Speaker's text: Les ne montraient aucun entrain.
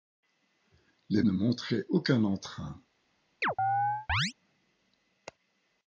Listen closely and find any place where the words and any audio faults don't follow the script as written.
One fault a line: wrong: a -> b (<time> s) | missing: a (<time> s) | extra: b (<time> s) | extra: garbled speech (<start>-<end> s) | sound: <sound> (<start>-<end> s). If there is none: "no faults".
sound: chirp (3.4-4.3 s)